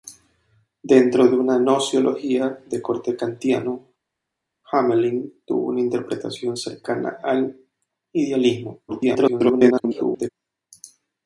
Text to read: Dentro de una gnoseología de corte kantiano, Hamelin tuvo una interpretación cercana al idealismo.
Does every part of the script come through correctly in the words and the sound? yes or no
no